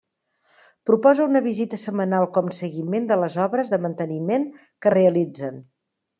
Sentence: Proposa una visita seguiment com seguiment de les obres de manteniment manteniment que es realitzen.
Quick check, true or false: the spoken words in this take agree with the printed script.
false